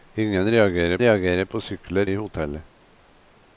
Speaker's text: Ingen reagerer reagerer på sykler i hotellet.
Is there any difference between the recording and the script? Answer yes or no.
no